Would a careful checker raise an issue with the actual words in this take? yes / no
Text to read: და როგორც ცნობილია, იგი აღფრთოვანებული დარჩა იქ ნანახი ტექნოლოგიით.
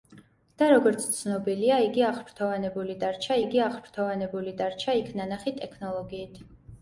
yes